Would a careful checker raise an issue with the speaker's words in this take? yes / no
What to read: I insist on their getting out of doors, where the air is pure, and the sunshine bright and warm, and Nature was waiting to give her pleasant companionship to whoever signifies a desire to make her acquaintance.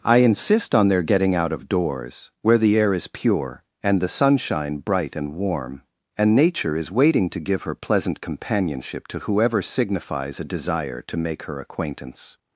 yes